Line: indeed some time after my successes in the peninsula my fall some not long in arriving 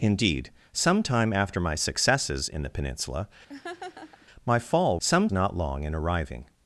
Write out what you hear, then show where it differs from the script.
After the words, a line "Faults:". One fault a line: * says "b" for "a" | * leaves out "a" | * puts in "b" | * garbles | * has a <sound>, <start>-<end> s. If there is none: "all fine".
indeed some time after my successes in the peninsula my fall some not long in arriving
Faults:
* has a laugh, 3.5-4.3 s